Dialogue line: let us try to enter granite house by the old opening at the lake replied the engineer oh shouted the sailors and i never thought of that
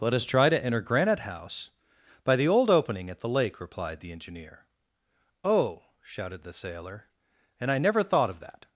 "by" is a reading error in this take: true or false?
false